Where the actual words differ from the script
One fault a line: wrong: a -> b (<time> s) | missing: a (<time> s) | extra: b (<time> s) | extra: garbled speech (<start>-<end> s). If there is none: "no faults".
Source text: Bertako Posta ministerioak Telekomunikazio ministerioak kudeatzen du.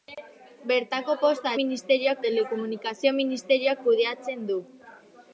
no faults